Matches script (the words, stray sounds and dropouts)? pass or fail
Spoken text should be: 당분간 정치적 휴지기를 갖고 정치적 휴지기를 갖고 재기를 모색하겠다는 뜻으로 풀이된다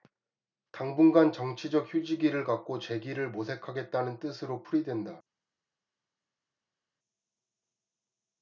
fail